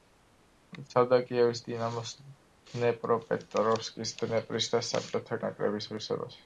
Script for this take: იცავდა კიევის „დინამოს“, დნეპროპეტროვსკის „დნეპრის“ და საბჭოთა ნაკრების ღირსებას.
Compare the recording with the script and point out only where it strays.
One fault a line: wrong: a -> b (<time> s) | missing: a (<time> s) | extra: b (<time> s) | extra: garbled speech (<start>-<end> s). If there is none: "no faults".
no faults